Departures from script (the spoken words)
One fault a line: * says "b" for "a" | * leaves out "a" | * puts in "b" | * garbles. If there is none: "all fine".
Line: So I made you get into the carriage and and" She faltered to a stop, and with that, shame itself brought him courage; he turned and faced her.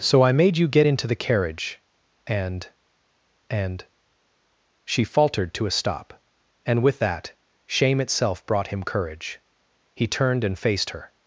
all fine